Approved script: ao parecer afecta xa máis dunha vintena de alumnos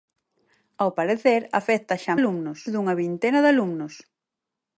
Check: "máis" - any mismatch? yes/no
yes